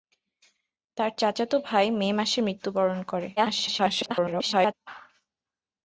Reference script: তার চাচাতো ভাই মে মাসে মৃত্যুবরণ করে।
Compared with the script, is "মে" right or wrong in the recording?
right